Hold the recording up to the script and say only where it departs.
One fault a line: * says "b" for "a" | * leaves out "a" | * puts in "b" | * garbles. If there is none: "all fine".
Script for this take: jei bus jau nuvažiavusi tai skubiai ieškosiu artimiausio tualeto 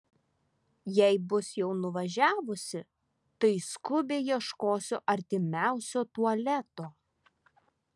all fine